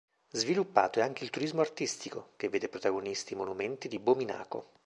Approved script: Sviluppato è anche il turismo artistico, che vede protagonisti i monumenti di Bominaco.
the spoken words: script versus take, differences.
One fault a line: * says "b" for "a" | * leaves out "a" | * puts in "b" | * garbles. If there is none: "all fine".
all fine